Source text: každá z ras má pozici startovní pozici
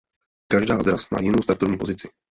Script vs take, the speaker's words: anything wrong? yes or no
yes